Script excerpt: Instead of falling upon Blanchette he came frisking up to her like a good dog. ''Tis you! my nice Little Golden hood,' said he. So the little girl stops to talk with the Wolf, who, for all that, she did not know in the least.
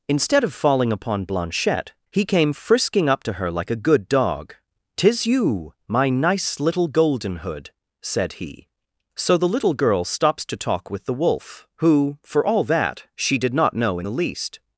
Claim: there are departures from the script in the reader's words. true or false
false